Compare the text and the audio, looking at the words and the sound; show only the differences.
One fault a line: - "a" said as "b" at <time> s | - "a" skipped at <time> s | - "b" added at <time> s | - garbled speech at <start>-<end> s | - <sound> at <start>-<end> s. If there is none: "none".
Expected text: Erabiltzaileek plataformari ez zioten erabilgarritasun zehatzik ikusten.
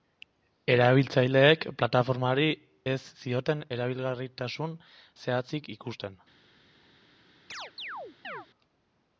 - chirp at 7.5-8.5 s